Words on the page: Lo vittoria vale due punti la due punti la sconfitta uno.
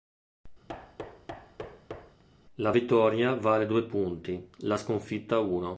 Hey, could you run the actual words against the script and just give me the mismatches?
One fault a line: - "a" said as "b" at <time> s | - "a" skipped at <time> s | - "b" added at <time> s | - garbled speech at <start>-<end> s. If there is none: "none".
- "Lo" said as "La" at 2.6 s
- "due punti la" skipped at 4.8 s